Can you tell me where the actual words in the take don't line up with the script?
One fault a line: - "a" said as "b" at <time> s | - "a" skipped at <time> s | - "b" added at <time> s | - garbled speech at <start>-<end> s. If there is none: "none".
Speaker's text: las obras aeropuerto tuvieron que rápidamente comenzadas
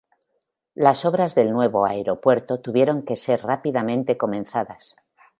- "del nuevo" added at 1.4 s
- "ser" added at 3.1 s